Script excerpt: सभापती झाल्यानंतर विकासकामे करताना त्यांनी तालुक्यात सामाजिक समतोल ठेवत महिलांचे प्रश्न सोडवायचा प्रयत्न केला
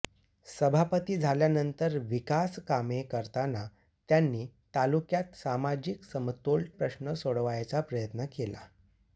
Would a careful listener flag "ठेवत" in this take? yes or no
yes